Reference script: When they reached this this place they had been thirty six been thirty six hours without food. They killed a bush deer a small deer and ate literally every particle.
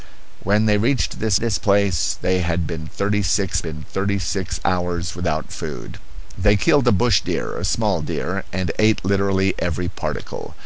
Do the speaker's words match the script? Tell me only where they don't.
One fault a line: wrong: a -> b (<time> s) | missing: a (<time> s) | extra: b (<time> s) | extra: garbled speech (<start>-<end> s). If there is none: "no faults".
no faults